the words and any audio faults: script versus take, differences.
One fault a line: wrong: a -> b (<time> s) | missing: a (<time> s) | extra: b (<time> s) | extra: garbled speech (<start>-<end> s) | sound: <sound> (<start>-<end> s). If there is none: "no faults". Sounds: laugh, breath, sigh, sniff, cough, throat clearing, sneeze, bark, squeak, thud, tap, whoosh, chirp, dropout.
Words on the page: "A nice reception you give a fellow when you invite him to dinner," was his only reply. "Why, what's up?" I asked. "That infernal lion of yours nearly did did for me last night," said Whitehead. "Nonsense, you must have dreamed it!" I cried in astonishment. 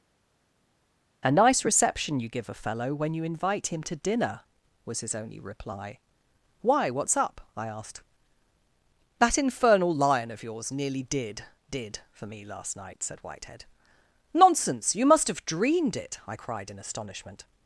no faults